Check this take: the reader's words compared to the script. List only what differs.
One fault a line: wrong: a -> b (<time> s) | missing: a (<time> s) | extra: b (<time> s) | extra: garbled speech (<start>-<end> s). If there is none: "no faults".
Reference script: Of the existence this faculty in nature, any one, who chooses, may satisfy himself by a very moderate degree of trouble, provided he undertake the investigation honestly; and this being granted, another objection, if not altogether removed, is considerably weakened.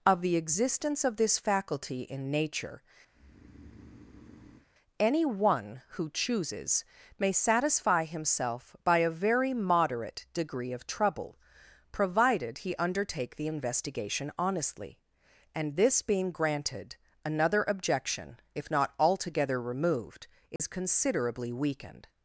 extra: of (1.0 s)